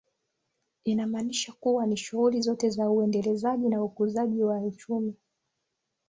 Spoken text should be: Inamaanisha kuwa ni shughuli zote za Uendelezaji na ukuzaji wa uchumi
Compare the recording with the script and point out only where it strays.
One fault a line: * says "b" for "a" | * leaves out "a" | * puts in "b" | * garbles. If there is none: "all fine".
all fine